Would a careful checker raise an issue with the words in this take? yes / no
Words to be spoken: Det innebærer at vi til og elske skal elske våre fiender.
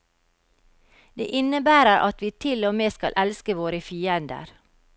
yes